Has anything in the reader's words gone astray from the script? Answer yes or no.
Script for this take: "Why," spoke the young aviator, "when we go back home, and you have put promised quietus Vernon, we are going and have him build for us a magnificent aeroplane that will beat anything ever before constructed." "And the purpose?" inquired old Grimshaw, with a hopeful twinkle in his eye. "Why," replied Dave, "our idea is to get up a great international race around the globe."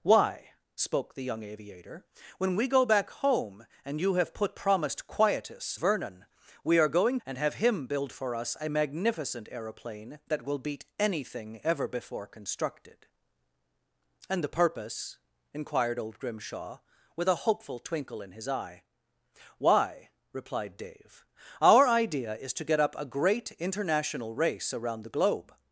no